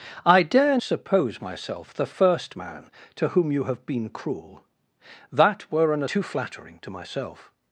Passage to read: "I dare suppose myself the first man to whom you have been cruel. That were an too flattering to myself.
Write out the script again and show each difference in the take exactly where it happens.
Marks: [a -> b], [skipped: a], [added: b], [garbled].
"I dare suppose myself the first man to whom you have been cruel. That were an too flattering to myself.